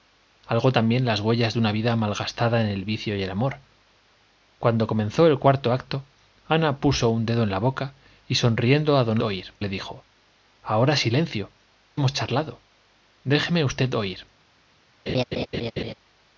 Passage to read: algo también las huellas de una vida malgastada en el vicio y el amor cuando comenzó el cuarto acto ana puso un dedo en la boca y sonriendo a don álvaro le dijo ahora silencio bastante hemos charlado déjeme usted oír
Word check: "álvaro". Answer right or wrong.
wrong